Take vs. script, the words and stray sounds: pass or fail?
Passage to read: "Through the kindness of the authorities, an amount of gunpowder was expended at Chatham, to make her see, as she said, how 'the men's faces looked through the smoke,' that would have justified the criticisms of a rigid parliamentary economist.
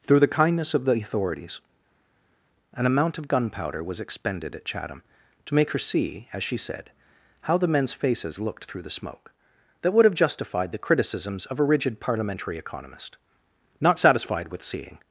fail